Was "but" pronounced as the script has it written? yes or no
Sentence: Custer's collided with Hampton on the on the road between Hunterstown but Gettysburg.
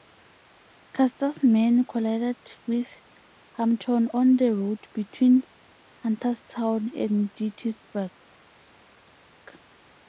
no